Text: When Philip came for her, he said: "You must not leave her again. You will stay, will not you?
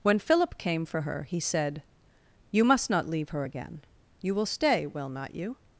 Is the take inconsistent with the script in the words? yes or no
no